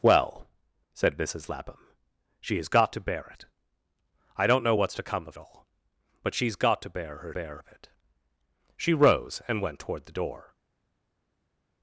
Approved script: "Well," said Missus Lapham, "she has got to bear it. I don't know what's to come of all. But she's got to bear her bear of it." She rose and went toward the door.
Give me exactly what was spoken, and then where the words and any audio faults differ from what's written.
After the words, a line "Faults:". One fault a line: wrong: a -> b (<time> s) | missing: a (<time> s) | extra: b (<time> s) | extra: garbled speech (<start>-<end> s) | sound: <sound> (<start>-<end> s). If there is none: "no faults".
"Well," said Missus Lapham, "she has got to bear it. I don't know what's to come of all. But she's got to bear her bear of it." She rose and went toward the door.
Faults:
no faults